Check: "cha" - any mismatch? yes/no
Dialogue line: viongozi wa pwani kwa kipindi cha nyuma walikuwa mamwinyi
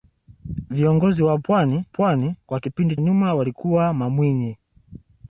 yes